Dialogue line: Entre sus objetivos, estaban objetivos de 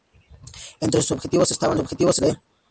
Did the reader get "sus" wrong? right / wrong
right